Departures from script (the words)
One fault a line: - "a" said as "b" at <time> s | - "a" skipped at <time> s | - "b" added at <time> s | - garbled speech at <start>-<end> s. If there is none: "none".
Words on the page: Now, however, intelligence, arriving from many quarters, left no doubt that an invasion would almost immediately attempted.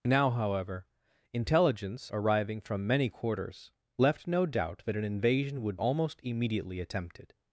none